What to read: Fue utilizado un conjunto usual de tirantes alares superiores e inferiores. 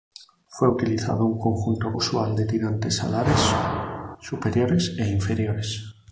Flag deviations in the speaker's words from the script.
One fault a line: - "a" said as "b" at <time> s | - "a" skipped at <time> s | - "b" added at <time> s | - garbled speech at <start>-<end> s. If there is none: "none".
none